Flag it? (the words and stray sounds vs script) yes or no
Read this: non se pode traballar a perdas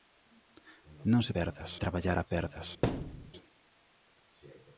yes